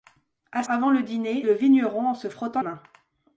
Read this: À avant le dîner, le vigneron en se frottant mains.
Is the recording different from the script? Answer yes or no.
no